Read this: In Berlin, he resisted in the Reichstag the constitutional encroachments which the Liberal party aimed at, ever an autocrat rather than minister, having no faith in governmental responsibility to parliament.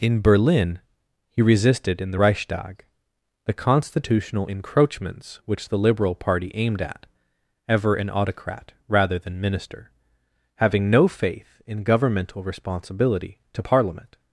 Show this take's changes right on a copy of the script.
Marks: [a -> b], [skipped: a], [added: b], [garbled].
In Berlin, he resisted in the Reichstag the constitutional encroachments which the Liberal party aimed at, ever an autocrat rather than minister, having no faith in governmental responsibility to parliament.